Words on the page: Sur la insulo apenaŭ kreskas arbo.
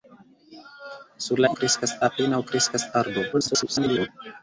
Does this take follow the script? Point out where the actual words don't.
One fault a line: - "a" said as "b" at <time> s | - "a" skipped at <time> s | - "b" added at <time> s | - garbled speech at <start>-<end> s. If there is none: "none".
- "insulo" said as "kreskas" at 1.6 s
- garbled speech at 3.3-4.1 s